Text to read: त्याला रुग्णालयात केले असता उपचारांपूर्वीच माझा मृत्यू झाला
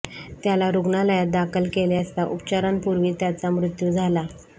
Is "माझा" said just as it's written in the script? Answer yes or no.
no